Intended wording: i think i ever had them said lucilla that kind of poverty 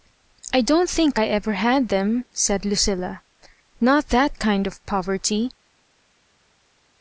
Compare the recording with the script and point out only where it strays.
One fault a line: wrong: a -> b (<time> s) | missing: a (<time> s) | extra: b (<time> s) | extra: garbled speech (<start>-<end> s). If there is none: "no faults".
extra: don*t (0.6 s)
extra: not (3.8 s)